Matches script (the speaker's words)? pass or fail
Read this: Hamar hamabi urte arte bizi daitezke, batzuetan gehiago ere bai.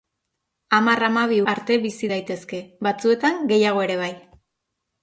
fail